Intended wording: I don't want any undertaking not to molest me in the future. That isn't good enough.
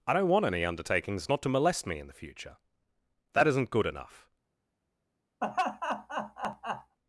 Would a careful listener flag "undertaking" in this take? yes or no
yes